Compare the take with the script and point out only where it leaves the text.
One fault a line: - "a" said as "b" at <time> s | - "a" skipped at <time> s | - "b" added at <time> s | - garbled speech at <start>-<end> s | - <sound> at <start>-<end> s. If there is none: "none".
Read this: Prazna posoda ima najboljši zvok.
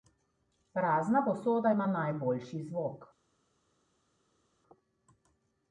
none